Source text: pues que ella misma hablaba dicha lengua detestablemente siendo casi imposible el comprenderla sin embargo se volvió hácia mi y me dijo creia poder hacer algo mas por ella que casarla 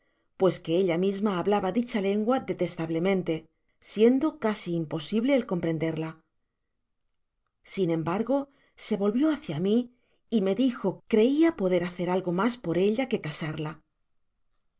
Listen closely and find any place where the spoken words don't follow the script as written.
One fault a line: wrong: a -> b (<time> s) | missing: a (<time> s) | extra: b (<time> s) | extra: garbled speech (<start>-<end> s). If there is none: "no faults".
no faults